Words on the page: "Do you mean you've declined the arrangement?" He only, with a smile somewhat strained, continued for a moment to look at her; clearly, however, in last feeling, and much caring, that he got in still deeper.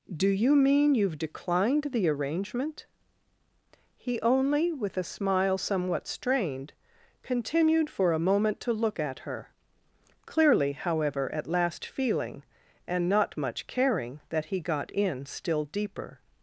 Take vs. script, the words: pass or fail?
fail